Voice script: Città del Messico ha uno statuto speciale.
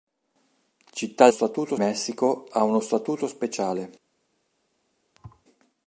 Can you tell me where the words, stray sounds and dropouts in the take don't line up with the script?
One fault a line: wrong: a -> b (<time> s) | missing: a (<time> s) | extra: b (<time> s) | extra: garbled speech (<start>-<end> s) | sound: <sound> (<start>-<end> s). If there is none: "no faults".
wrong: del -> statuto (1.3 s)
sound: thud (5.1-5.4 s)